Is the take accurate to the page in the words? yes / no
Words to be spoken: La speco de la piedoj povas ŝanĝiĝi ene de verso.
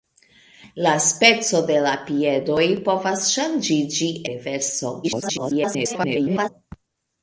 no